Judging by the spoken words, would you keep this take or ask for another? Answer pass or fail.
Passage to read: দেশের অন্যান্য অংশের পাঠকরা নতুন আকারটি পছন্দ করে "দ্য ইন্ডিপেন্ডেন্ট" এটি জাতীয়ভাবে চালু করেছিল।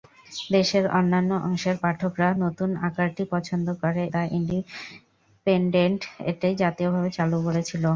pass